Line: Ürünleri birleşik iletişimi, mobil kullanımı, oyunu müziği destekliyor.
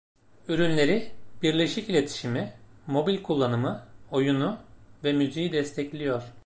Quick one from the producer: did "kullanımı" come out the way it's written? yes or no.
yes